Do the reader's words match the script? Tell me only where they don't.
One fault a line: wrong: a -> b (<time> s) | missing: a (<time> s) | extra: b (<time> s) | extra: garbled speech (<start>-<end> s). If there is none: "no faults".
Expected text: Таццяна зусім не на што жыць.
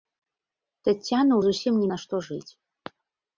no faults